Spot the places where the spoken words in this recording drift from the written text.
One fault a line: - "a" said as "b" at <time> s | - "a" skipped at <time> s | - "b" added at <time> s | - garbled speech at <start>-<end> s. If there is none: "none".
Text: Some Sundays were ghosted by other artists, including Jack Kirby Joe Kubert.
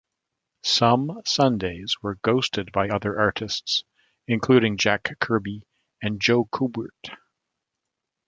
- "and" added at 6.0 s